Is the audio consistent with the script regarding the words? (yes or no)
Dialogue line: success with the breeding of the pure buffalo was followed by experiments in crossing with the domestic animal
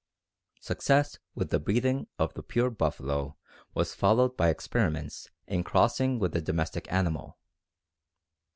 yes